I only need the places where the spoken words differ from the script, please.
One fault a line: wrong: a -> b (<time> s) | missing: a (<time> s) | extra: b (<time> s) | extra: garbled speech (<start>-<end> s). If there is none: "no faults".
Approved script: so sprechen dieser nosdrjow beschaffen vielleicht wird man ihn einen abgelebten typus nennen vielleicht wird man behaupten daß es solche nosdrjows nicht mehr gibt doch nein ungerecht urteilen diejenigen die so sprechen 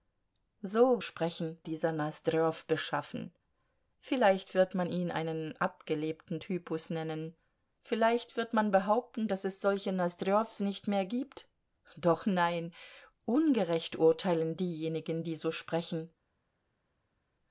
no faults